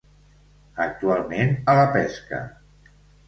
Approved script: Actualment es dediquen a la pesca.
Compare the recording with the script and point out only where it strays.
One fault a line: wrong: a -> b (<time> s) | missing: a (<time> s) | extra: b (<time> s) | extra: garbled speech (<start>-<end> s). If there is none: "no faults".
missing: es dediquen (1.6 s)